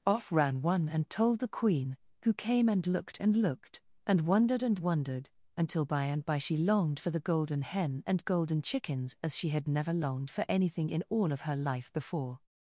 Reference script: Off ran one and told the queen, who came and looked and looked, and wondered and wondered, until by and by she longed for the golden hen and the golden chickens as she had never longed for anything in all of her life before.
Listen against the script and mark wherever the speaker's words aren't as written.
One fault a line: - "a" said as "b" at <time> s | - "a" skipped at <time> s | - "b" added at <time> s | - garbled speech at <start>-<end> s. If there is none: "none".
- "the" skipped at 8.2 s